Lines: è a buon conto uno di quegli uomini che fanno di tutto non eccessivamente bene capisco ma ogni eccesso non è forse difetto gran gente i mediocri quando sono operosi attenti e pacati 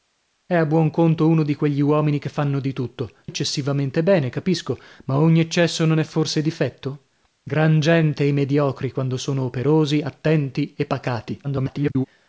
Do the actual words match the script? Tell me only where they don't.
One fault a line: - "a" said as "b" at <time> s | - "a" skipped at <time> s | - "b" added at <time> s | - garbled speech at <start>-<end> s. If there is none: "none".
- "non" skipped at 3.1 s
- garbled speech at 11.4-12.1 s